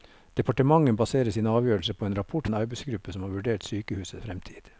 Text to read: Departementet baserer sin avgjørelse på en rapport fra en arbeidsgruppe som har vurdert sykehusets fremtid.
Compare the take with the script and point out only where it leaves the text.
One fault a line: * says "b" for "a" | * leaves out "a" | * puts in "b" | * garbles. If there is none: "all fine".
* leaves out "fra"